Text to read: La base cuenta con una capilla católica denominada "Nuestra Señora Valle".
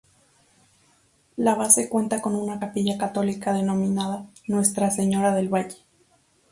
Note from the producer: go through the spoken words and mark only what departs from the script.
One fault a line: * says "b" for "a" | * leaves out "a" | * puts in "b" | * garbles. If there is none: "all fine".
* puts in "del"